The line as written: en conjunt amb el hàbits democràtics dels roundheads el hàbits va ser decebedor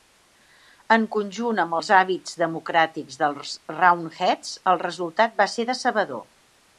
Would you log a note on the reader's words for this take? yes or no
yes